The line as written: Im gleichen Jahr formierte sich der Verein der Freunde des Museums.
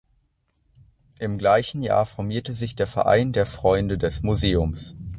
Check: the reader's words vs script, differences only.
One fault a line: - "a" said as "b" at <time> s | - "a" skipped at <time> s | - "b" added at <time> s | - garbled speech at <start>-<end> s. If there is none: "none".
none